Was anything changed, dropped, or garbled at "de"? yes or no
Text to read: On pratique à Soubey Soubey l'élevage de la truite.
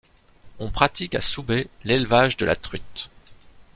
no